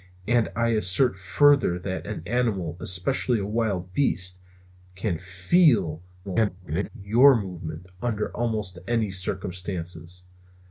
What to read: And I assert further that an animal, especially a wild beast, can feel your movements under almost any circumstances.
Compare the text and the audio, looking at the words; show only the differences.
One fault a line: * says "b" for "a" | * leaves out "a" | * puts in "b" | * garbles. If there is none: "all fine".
* garbles